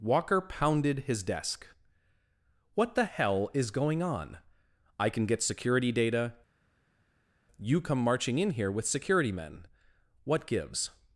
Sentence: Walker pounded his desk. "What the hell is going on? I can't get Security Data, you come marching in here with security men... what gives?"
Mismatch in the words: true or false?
true